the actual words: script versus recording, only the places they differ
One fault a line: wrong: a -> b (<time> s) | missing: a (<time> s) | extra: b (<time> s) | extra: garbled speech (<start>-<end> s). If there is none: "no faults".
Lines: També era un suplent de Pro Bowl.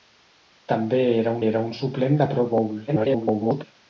extra: era (1.5 s)
extra: garbled speech (2.9-3.6 s)